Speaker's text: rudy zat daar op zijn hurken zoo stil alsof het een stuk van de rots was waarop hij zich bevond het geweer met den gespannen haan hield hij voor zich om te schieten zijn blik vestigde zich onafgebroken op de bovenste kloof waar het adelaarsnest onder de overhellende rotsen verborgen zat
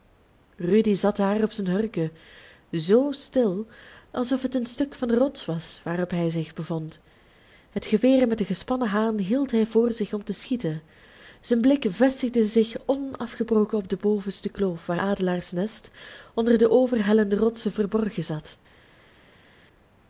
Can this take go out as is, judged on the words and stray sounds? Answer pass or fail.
fail